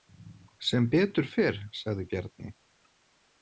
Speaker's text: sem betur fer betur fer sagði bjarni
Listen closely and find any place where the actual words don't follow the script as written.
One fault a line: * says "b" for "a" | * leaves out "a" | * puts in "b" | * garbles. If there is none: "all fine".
* leaves out "betur fer"